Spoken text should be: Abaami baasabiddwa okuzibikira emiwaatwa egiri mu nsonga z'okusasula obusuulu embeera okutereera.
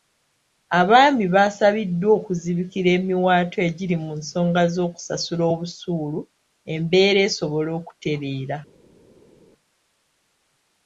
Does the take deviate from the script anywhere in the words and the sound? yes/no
yes